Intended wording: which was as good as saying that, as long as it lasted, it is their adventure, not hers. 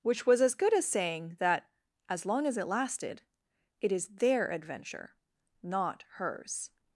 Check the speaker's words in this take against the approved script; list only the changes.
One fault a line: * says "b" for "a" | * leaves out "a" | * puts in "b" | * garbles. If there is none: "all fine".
all fine